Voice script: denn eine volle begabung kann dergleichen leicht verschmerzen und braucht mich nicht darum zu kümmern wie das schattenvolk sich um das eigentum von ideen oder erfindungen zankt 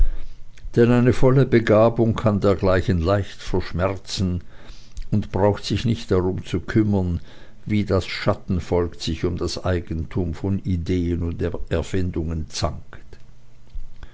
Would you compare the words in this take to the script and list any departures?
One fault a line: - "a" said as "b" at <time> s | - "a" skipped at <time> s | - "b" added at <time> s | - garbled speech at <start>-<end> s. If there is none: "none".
- "mich" said as "sich" at 5.6 s
- "oder" said as "und" at 11.2 s